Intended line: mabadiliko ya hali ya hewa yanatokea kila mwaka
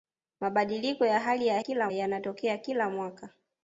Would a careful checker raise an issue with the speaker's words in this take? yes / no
yes